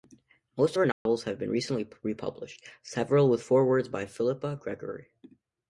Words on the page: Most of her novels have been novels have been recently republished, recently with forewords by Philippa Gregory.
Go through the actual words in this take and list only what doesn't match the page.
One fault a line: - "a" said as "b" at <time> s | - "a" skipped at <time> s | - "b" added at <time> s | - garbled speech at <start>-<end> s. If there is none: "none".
- "novels have been" skipped at 1.5 s
- "recently" said as "several" at 2.8 s